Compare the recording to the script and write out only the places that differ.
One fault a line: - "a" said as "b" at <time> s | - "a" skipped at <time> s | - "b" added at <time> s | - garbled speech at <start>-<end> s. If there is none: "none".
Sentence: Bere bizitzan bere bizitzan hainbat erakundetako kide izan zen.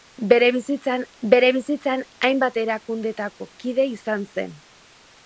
none